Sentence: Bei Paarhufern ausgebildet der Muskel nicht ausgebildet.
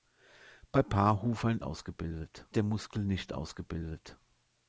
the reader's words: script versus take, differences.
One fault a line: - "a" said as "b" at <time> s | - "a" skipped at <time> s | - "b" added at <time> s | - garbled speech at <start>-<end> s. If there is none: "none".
none